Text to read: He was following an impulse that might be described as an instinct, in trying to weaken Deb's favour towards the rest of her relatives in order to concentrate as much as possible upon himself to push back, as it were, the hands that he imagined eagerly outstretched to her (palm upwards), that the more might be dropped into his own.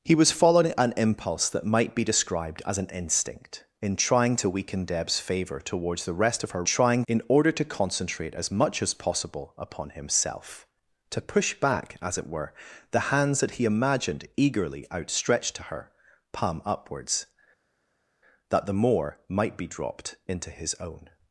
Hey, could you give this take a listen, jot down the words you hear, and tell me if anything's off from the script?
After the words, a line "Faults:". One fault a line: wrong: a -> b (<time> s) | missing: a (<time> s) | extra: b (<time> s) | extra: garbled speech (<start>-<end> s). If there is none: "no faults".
He was following an impulse that might be described as an instinct, in trying to weaken Deb's favour towards the rest of her trying in order to concentrate as much as possible upon himself to push back, as it were, the hands that he imagined eagerly outstretched to her (palm upwards), that the more might be dropped into his own.
Faults:
wrong: relatives -> trying (6.6 s)